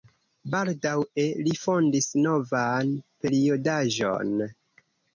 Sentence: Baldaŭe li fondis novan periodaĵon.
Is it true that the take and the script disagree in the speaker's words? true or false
false